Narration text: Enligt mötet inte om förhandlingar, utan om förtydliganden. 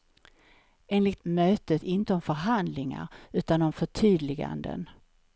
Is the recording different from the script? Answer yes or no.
no